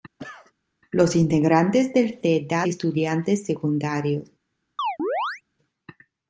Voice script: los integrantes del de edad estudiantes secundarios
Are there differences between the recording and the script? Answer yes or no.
no